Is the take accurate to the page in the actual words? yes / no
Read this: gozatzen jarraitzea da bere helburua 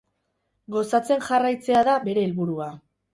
yes